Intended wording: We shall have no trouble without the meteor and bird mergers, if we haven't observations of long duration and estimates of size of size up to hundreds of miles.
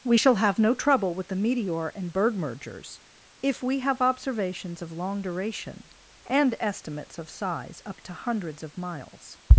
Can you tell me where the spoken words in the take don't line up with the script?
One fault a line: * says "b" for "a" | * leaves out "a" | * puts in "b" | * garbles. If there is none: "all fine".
* says "with" for "without"
* says "have" for "haven't"
* leaves out "of size"